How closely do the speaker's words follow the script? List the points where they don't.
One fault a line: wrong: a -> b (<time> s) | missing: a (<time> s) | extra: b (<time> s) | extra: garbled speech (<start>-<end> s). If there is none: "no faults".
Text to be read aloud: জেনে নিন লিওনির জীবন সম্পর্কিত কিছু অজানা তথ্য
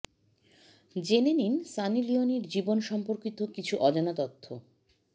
extra: সানি (1.7 s)